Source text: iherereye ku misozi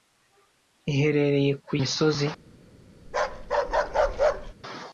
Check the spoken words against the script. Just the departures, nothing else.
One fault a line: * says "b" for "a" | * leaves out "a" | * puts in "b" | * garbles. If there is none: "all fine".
all fine